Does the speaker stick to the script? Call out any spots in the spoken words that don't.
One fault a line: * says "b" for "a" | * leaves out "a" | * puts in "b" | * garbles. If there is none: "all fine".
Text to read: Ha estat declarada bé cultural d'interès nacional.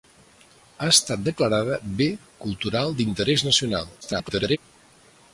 * garbles